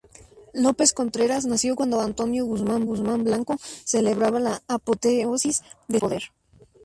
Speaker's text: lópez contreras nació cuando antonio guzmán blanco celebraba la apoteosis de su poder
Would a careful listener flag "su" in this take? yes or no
yes